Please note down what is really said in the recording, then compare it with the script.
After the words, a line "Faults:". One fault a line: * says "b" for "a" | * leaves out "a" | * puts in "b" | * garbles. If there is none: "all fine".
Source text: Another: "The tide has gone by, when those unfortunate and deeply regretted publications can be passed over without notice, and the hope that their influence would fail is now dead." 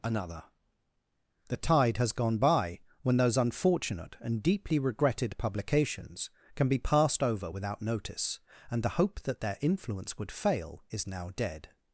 Another: "The tide has gone by, when those unfortunate and deeply regretted publications can be passed over without notice, and the hope that their influence would fail is now dead."
Faults:
all fine